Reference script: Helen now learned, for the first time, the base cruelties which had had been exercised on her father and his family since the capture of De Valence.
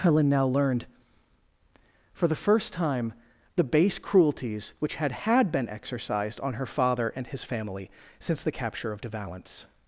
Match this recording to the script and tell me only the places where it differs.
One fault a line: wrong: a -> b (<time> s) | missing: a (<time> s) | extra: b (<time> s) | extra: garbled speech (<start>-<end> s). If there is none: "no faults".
no faults